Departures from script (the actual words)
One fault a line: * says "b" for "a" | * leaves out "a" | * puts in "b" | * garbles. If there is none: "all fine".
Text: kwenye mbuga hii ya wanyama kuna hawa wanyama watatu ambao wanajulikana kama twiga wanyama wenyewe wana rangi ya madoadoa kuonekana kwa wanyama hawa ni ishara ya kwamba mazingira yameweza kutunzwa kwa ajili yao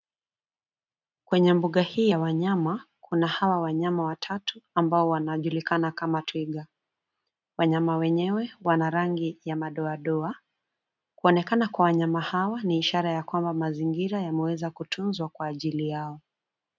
all fine